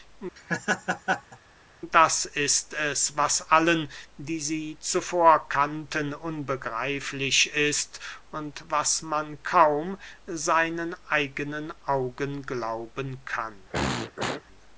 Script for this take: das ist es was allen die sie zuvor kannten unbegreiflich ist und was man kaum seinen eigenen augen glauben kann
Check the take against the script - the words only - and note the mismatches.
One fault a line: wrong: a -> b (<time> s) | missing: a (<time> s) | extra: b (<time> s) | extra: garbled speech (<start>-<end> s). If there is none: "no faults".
no faults